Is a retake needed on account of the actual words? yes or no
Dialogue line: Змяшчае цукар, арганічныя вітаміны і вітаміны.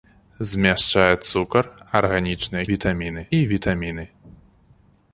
no